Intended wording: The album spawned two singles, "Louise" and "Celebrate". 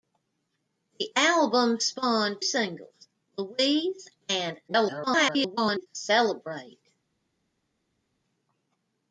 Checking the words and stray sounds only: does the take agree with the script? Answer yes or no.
no